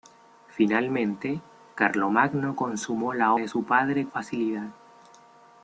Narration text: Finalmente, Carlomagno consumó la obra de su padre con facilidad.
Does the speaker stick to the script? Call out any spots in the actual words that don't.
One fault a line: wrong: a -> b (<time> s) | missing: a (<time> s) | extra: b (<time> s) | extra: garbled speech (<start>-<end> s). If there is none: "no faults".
missing: obra (3.4 s)
missing: con (4.1 s)